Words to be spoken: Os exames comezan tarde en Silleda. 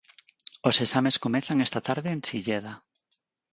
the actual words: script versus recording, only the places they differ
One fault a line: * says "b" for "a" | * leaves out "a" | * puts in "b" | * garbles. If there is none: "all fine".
* puts in "esta"